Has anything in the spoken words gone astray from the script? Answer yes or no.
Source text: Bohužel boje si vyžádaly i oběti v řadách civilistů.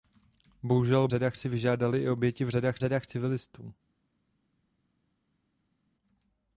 yes